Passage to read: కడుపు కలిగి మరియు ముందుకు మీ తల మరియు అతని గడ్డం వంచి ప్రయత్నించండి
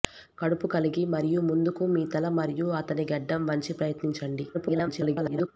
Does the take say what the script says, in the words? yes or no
no